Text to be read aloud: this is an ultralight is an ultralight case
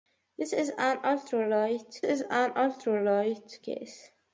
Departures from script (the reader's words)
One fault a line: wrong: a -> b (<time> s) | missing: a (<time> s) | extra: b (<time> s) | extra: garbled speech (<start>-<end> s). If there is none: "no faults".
no faults